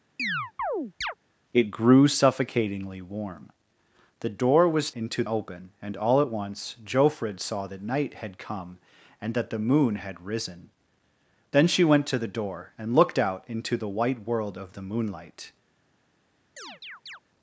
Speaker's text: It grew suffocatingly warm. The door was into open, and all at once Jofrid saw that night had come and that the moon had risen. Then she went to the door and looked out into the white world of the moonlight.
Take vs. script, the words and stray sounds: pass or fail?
fail